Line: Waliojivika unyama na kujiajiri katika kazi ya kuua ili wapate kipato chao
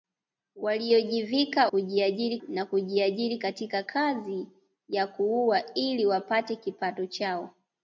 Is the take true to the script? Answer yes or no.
no